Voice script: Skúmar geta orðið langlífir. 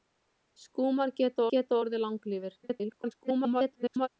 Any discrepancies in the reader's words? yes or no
yes